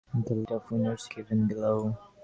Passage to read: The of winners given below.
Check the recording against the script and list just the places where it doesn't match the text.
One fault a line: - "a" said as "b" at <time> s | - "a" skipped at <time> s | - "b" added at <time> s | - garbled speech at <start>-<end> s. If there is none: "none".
none